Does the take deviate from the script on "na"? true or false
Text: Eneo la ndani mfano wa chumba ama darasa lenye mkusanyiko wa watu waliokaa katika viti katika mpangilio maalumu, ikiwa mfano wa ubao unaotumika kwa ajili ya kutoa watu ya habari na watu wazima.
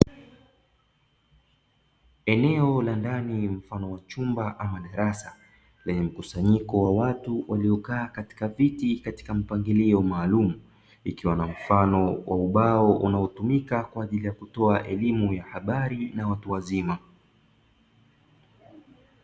false